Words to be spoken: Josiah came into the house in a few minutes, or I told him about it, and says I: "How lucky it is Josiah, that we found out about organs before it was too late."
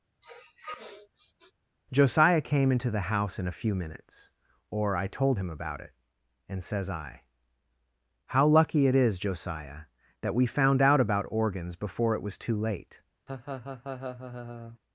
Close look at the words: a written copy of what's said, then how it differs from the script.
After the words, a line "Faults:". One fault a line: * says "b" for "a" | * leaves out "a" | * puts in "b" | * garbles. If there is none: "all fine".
Josiah came into the house in a few minutes, or I told him about it, and says I: "How lucky it is Josiah, that we found out about organs before it was too late."
Faults:
all fine